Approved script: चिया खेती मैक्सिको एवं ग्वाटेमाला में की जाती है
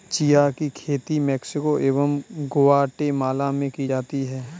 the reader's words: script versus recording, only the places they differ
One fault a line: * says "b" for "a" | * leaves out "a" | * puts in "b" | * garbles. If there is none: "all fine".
* puts in "की"